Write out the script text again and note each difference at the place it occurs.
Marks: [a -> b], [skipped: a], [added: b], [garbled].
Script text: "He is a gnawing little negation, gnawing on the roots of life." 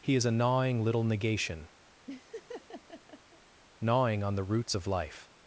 "He is a gnawing little negation, gnawing on the roots of life."